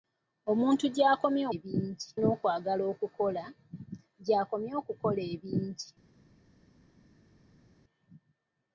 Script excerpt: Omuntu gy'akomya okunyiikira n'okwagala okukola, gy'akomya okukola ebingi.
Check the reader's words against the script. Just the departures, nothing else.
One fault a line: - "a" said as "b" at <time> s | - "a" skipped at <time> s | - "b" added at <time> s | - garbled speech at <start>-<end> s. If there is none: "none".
- "okunyiikira" said as "ebingi" at 1.5 s